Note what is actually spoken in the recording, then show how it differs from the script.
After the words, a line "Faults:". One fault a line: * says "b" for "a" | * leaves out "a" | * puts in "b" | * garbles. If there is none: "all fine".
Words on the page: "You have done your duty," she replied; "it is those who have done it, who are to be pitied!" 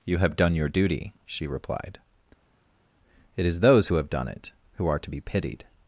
"You have done your duty," she replied; "it is those who have done it, who are to be pitied!"
Faults:
all fine